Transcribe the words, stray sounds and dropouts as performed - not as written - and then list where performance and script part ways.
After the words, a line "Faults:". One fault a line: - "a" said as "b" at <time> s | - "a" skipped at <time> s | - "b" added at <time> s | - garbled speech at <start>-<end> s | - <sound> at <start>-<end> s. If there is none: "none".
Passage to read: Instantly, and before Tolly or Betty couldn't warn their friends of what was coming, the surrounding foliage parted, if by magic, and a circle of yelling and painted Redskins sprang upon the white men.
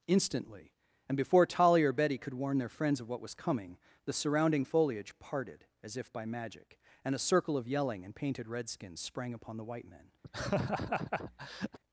Instantly, and before Tolly or Betty could warn their friends of what was coming, the surrounding foliage parted, as if by magic, and a circle of yelling and painted Redskins sprang upon the white men.
Faults:
- "couldn't" said as "could" at 2.2 s
- "as" added at 5.8 s
- laugh at 10.2-11.8 s